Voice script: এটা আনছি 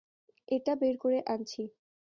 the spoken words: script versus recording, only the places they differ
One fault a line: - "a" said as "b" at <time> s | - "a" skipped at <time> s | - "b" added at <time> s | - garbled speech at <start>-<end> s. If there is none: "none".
- "বের করে" added at 0.8 s